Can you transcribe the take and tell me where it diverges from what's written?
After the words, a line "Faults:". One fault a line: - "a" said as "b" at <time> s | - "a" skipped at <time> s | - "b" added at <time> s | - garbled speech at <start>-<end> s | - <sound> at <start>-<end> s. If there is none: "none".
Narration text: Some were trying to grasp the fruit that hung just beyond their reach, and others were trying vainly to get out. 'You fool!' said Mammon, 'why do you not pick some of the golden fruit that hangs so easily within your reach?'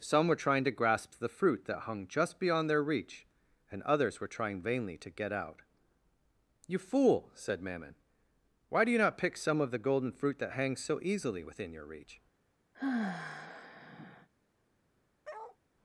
Some were trying to grasp the fruit that hung just beyond their reach, and others were trying vainly to get out. 'You fool!' said Mammon, 'why do you not pick some of the golden fruit that hangs so easily within your reach?'
Faults:
- sigh at 12.7-14.3 s
- bark at 15.2-15.6 s